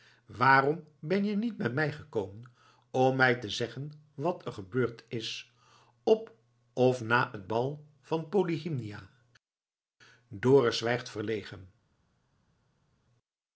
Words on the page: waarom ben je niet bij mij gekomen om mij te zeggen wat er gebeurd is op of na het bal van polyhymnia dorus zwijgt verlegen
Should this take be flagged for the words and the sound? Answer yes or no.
no